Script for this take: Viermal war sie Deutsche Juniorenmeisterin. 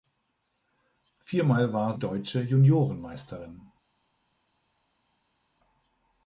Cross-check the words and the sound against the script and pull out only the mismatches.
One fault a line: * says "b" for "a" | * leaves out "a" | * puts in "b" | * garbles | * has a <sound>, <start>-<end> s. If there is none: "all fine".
* leaves out "sie"